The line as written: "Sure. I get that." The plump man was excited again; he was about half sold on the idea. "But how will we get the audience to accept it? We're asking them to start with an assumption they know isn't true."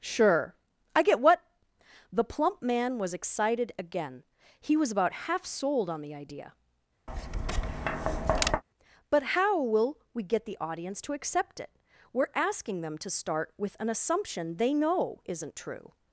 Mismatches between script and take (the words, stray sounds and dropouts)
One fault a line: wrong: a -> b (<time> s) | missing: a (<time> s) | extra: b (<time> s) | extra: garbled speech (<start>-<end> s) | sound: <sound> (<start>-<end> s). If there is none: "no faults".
wrong: that -> what (1.2 s)
sound: tap (7.1-8.6 s)